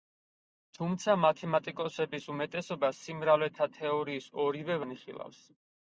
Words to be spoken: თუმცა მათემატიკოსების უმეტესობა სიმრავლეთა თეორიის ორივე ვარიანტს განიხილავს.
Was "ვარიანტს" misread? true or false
true